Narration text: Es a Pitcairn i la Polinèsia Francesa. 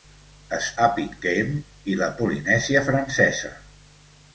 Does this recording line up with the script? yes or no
yes